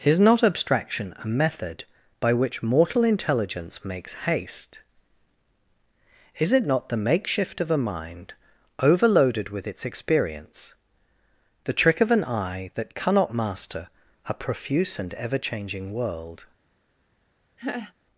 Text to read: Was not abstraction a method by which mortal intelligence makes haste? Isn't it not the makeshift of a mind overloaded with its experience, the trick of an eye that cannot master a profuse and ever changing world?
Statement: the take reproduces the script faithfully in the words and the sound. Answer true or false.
false